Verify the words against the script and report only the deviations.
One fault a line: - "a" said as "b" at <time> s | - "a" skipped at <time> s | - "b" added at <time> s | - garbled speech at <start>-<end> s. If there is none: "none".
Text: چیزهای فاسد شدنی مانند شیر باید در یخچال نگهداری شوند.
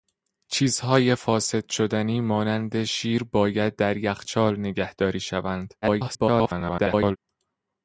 - garbled speech at 5.8-7.2 s